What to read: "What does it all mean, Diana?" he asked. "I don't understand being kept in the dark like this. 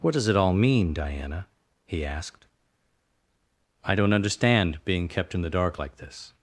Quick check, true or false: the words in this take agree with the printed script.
true